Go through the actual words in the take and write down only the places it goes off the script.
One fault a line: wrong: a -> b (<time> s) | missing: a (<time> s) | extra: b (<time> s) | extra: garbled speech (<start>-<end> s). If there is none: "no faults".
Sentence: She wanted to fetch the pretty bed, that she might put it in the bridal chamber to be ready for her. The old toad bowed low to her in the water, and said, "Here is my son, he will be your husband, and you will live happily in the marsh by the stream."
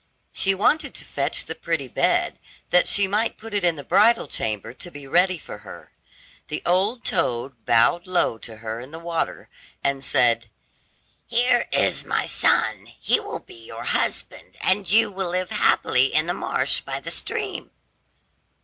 no faults